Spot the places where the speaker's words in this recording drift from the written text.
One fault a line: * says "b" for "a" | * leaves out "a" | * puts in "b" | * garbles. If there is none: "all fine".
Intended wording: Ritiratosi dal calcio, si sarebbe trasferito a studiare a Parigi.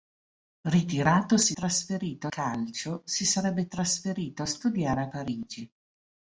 * says "trasferito" for "dal"